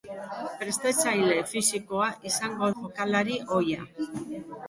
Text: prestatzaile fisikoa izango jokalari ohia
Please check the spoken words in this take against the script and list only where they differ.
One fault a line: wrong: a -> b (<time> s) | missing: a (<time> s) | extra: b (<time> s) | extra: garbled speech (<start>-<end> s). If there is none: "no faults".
no faults